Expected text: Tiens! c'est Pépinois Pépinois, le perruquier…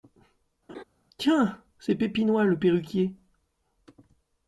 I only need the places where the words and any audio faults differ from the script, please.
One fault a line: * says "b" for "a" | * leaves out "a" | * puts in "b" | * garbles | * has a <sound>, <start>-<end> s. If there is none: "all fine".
* has a laugh, 0.7-0.8 s
* leaves out "Pépinois"